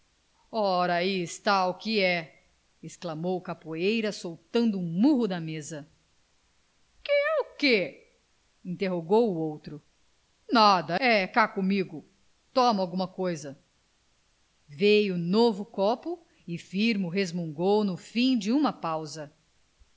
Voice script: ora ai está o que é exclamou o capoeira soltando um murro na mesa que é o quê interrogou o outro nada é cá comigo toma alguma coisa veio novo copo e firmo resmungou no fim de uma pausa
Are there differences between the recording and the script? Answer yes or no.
no